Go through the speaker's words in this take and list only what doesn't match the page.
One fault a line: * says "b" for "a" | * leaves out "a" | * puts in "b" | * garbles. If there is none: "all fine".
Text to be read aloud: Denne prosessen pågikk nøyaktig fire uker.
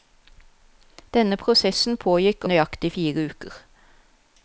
all fine